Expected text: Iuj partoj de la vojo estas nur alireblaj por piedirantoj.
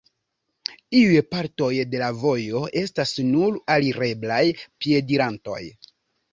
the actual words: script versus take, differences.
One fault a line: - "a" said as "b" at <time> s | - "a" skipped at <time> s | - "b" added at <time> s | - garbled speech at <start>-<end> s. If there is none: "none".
- "por" skipped at 4.4 s